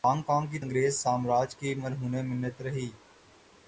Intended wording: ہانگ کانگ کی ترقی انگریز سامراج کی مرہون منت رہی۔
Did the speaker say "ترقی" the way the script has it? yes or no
no